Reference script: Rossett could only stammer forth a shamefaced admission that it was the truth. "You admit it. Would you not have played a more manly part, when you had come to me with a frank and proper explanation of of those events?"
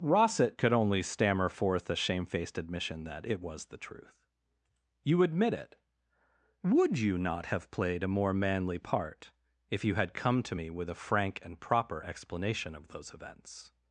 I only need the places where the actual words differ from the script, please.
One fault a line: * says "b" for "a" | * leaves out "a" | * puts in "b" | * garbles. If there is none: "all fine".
* says "if" for "when"
* leaves out "of"